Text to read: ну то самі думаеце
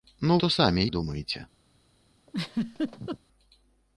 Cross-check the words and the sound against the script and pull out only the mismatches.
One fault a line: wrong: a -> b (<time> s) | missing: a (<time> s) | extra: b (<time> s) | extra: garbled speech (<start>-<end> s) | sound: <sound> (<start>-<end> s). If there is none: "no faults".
sound: laugh (2.3-3.2 s)